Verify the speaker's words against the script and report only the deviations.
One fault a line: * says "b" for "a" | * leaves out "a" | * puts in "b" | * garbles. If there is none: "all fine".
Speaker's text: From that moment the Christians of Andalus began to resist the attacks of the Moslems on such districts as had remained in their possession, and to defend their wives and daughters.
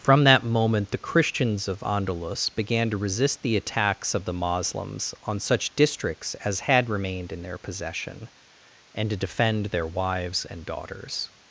all fine